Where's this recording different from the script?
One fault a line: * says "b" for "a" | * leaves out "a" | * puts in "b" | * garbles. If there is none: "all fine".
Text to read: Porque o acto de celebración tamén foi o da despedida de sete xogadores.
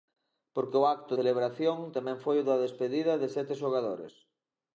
* leaves out "de"